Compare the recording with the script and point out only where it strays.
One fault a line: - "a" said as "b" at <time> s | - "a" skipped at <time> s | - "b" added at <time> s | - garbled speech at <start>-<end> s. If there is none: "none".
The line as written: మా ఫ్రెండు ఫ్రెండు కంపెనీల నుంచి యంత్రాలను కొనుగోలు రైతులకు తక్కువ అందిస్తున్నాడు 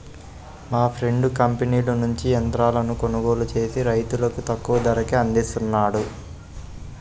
- "ఫ్రెండు" skipped at 1.3 s
- "చేసి" added at 3.5 s
- "ధరకే" added at 4.9 s